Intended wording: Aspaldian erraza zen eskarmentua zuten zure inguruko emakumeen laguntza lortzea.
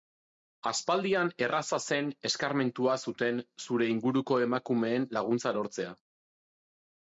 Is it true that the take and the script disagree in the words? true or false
false